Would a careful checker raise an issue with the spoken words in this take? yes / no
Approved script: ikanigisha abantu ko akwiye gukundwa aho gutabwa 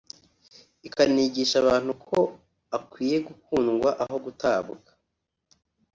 no